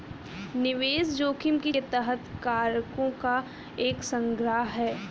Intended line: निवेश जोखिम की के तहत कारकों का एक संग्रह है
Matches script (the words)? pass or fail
pass